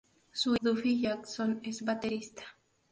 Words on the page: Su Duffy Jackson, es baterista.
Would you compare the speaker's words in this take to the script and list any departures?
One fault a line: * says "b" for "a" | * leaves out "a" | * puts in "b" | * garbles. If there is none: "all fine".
all fine